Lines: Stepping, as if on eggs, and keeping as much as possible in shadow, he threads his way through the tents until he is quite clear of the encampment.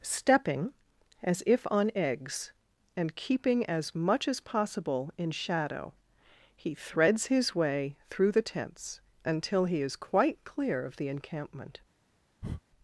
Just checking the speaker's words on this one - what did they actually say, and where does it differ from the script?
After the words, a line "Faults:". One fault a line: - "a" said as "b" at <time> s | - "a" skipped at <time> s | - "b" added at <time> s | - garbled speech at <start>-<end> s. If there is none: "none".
Stepping, as if on eggs, and keeping as much as possible in shadow, he threads his way through the tents until he is quite clear of the encampment.
Faults:
none